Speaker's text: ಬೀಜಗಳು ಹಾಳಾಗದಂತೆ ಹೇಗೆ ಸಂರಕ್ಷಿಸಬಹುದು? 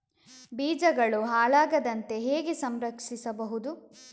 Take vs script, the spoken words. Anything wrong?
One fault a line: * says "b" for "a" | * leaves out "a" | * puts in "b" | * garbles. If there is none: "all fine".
all fine